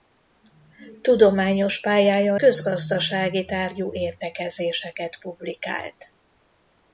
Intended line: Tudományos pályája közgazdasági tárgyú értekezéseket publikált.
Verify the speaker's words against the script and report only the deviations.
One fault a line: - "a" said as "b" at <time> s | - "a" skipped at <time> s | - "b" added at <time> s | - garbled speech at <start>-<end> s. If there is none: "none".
none